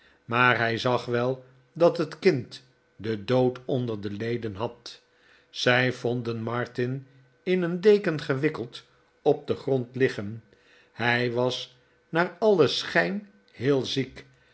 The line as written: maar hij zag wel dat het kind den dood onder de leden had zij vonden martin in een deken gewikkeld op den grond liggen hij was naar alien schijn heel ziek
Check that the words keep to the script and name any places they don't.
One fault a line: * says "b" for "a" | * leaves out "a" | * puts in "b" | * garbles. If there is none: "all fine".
all fine